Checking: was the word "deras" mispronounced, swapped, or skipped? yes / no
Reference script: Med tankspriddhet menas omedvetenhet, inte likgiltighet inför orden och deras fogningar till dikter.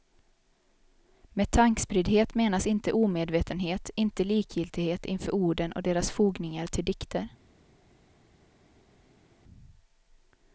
no